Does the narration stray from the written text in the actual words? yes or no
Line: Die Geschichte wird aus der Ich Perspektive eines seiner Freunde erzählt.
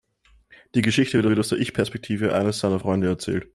yes